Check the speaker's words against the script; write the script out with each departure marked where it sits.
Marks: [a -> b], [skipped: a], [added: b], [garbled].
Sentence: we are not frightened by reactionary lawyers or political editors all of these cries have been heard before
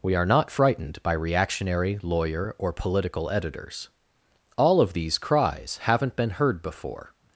we are not frightened by reactionary [lawyers -> lawyer] or political editors all of these cries [have -> haven't] been heard before